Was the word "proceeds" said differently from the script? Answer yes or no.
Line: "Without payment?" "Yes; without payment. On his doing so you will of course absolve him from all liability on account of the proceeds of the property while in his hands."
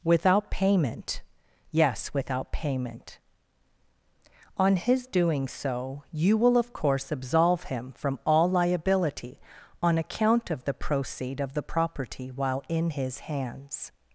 yes